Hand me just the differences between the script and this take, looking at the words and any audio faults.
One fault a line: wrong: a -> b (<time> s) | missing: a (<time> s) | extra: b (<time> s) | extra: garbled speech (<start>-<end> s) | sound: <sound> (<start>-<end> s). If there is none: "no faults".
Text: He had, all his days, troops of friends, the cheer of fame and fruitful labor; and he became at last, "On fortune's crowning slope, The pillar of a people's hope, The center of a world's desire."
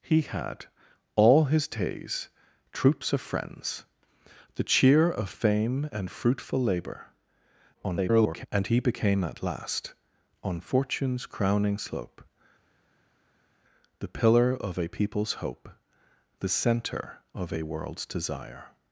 extra: garbled speech (7.7-8.5 s)